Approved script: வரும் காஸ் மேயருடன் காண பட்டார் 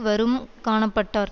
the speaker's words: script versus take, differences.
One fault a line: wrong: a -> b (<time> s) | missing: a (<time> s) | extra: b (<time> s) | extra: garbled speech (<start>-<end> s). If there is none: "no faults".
missing: காஸ் மேயருடன் (0.4 s)